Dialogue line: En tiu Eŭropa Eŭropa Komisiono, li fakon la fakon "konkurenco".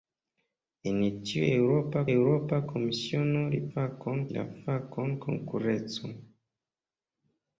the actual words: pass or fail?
pass